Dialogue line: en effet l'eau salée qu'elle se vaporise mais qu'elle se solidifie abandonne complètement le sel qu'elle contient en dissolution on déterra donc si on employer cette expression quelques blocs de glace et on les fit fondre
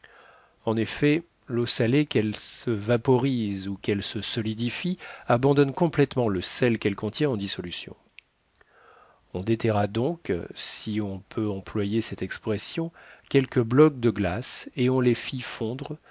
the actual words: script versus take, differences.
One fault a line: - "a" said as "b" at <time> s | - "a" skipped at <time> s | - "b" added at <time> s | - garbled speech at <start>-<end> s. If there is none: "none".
- "mais" said as "ou" at 3.7 s
- "peut" added at 11.2 s